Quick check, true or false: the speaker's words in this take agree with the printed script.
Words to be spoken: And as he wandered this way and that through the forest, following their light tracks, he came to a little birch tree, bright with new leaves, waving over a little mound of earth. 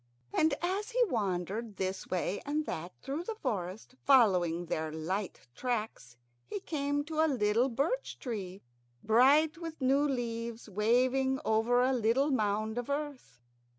true